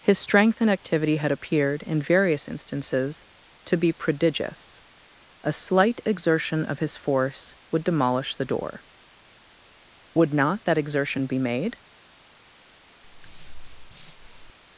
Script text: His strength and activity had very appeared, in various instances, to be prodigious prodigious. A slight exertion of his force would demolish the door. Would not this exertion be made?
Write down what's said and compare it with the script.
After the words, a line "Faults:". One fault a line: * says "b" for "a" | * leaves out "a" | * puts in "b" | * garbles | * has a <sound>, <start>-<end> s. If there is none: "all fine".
His strength and activity had appeared, in various instances, to be prodigious. A slight exertion of his force would demolish the door. Would not that exertion be made?
Faults:
* leaves out "very"
* leaves out "prodigious"
* says "that" for "this"
* has a breath, 13.0-14.5 s